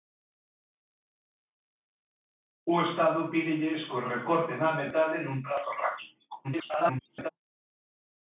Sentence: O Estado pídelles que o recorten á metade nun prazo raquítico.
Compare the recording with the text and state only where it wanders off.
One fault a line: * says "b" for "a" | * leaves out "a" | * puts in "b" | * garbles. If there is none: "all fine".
* garbles